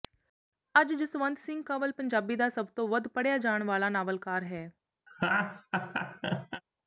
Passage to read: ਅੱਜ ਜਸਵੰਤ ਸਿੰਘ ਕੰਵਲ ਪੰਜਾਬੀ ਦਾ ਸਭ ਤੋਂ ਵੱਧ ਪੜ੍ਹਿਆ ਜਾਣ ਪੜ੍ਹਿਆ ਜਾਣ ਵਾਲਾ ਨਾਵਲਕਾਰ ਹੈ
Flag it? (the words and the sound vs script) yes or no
yes